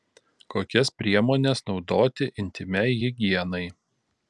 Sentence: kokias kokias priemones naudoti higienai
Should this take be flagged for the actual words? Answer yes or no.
yes